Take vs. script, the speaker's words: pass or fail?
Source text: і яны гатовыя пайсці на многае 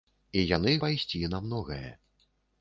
fail